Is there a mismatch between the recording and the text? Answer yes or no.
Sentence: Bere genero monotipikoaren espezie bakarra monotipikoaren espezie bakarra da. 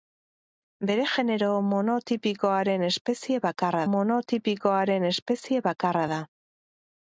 no